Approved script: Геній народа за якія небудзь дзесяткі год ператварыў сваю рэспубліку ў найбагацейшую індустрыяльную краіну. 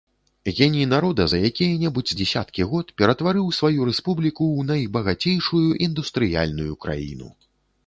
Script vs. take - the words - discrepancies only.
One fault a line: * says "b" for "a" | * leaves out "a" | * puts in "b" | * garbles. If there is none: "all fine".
all fine